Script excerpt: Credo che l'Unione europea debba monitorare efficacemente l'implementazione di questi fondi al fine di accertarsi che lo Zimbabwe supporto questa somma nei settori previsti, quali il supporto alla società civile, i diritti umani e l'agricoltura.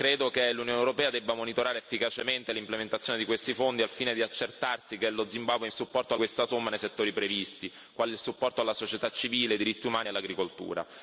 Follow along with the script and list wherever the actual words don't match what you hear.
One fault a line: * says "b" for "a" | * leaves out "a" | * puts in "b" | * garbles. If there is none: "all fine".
all fine